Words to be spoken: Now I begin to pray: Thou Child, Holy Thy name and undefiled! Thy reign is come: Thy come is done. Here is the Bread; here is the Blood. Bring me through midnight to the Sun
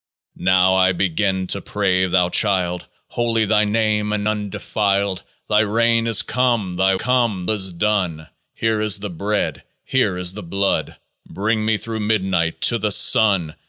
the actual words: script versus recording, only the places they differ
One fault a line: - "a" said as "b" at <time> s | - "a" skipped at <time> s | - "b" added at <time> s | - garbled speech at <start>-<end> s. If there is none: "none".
none